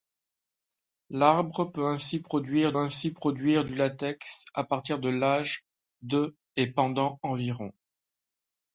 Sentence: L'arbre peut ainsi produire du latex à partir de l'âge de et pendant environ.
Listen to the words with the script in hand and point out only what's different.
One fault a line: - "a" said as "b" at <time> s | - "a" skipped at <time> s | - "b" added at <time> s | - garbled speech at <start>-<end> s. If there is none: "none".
- "ainsi produire" added at 2.8 s